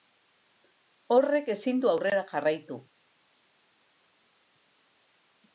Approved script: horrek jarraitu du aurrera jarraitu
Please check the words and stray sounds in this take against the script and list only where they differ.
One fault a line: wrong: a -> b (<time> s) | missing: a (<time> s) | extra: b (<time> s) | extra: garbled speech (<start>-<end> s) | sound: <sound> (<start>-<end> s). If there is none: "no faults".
wrong: jarraitu -> ezin (1.6 s)